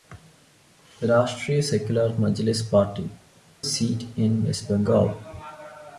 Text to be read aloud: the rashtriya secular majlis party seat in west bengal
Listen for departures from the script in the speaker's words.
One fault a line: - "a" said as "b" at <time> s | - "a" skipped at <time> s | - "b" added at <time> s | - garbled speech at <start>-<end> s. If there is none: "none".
none